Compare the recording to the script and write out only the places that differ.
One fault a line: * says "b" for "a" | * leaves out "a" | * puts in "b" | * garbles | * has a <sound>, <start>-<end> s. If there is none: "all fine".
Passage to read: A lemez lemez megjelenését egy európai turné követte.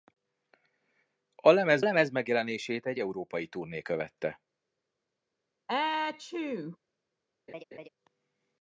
* has a sneeze, 5.7-6.8 s
* has a laugh, 7.5-7.9 s